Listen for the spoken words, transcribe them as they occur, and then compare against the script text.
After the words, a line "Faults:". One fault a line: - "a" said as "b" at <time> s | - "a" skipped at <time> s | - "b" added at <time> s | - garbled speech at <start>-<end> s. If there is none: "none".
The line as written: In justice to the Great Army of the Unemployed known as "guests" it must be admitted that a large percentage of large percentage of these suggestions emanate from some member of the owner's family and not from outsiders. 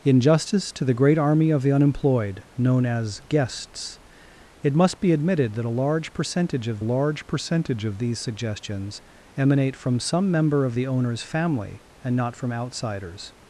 In justice to the Great Army of the Unemployed known as "guests" it must be admitted that a large percentage of large percentage of these suggestions emanate from some member of the owner's family and not from outsiders.
Faults:
none